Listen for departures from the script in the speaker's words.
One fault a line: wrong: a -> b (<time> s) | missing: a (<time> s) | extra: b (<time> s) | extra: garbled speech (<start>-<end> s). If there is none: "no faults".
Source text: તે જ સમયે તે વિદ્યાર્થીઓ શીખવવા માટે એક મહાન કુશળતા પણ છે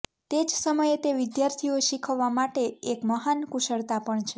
no faults